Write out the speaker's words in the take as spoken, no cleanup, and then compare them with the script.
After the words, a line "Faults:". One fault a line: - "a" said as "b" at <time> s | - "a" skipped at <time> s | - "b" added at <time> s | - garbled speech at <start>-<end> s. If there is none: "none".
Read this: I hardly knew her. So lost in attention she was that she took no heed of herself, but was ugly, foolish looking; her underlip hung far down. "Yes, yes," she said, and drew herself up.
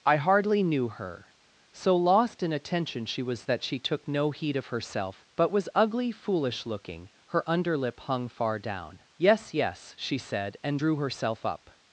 I hardly knew her. So lost in attention she was that she took no heed of herself, but was ugly, foolish looking; her underlip hung far down. "Yes, yes," she said, and drew herself up.
Faults:
none